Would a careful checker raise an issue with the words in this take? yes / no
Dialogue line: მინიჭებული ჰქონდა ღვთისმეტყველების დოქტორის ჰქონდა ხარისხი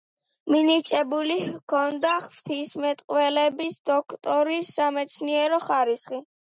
yes